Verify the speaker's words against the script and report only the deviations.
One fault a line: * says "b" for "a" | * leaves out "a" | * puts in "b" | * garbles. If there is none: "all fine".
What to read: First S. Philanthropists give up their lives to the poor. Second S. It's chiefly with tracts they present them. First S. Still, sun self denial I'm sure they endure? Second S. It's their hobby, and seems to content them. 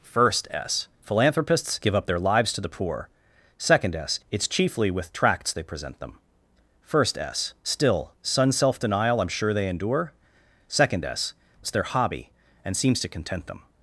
all fine